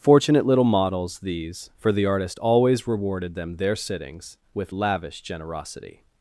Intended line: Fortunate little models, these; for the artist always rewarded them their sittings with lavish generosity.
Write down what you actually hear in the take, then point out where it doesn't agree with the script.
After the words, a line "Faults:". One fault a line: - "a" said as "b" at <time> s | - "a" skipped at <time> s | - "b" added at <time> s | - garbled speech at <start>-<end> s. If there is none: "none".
Fortunate little models, these; for the artist always rewarded them their sittings with lavish generosity.
Faults:
none